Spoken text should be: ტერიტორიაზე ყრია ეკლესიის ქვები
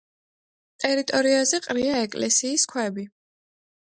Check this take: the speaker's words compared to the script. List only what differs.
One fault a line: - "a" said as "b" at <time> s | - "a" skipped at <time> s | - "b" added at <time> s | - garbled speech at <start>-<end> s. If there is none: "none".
none